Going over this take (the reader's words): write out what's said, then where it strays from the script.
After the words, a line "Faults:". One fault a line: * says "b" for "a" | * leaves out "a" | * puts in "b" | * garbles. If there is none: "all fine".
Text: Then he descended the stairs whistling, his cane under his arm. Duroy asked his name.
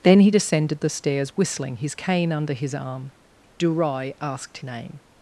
Then he descended the stairs whistling, his cane under his arm. Duroy asked name.
Faults:
* leaves out "his"